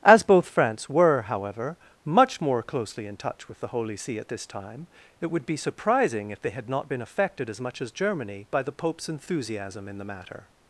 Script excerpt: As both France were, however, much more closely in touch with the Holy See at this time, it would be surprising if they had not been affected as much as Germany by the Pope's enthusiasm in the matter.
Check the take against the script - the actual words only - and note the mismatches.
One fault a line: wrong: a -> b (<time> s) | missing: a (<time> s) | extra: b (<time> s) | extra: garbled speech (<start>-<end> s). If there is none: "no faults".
no faults